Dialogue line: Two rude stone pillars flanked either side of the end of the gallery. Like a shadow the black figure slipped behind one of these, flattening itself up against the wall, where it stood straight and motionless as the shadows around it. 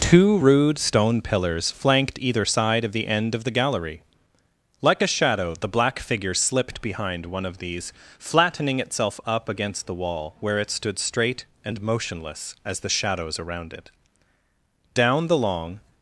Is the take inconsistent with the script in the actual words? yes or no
yes